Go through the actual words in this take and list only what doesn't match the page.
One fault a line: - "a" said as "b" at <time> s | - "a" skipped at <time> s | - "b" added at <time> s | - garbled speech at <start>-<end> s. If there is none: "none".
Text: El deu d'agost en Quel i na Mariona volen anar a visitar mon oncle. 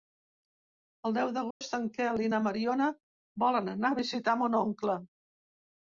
none